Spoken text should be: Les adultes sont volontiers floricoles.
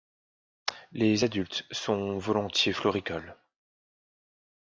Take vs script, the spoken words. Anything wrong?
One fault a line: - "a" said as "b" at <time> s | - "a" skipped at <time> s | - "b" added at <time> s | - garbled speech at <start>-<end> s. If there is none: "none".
none